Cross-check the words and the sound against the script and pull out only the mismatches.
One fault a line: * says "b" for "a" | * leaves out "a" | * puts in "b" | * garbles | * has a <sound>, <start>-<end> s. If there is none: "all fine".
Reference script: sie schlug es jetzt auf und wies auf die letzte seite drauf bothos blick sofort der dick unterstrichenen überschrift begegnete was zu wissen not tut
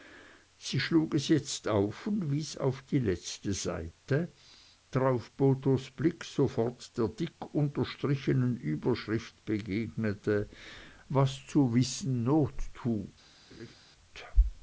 * has a laugh, 13.5-13.8 s